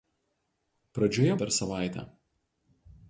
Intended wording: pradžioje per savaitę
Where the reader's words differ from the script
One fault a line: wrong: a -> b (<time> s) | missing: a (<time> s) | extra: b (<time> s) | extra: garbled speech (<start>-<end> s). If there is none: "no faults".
no faults